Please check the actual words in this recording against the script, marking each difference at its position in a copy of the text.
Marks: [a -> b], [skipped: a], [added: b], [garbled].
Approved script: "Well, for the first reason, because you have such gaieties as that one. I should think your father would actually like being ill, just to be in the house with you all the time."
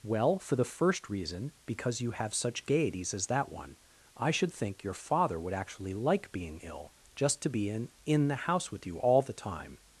"Well, for the first reason, because you have such gaieties as that one. I should think your father would actually like being ill, just to be in [added: in] the house with you all the time."